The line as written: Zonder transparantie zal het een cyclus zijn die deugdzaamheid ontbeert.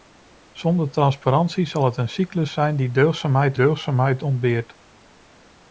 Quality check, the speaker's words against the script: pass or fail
fail